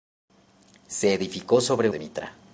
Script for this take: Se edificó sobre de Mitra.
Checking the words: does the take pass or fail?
pass